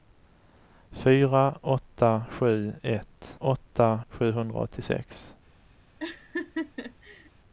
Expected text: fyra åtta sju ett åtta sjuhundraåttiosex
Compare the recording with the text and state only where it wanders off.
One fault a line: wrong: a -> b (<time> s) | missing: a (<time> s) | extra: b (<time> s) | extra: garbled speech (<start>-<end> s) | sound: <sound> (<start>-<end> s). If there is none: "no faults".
sound: laugh (6.0-7.3 s)